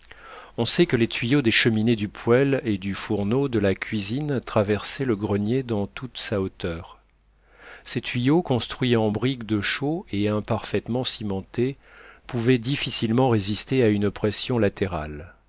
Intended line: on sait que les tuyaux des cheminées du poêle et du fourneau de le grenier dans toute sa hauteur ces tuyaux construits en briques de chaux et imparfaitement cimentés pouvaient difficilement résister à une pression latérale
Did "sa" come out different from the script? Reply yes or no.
no